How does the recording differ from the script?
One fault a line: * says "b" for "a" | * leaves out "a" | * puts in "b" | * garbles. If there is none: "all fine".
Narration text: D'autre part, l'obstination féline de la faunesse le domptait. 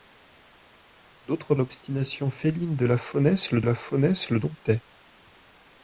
* leaves out "part"
* puts in "la faunesse le"